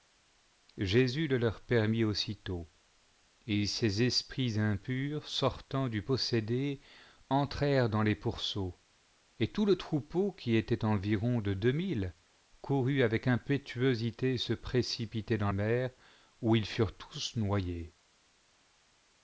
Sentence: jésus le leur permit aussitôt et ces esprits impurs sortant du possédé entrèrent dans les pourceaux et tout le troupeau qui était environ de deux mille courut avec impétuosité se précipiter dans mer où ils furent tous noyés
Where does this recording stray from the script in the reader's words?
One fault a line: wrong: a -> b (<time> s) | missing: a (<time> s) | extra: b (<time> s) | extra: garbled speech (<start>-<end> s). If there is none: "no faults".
no faults